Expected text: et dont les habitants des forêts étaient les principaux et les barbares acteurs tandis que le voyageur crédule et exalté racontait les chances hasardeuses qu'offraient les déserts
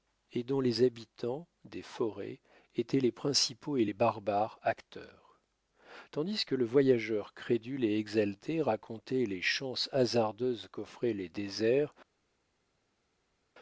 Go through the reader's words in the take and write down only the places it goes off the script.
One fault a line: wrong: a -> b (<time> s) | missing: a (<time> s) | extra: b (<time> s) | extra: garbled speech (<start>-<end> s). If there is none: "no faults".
no faults